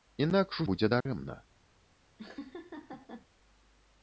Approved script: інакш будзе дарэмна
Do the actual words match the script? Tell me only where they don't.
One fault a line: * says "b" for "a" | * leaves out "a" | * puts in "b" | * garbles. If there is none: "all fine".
all fine